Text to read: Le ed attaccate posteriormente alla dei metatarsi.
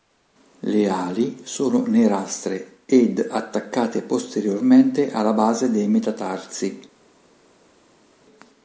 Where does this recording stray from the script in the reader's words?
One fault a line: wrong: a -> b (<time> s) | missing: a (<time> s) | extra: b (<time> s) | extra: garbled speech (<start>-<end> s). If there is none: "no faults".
extra: ali sono nerastre (0.9 s)
extra: base (5.3 s)